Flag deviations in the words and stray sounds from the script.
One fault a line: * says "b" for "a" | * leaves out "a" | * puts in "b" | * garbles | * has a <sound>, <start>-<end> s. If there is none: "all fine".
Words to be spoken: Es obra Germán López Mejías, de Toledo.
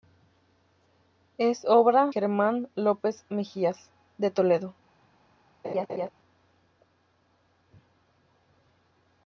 * has a laugh, 5.6-6.1 s